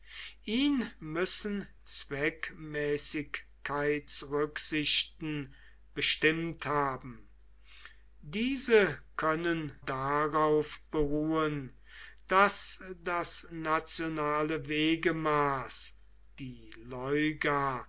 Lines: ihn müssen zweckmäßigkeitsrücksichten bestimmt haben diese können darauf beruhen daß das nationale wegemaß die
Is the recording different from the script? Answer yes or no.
no